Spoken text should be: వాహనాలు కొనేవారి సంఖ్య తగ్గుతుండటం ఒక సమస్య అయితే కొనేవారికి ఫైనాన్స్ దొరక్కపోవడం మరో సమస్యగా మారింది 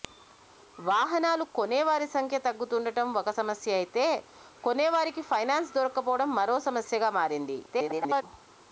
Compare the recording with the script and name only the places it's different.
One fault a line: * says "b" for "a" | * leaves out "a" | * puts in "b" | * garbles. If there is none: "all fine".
* garbles